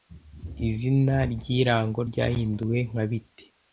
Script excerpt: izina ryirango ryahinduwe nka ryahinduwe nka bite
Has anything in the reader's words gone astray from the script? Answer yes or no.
yes